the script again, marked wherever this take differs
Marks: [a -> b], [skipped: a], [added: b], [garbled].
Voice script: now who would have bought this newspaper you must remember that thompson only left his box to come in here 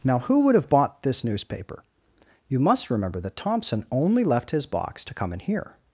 now who would have bought this newspaper you must remember that thompson only left his box to come in here